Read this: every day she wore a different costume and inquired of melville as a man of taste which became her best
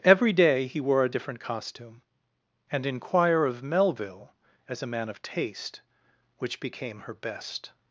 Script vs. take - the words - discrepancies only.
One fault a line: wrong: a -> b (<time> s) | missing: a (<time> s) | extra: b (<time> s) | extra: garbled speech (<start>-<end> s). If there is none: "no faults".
wrong: she -> he (0.7 s)
wrong: inquired -> inquire (2.9 s)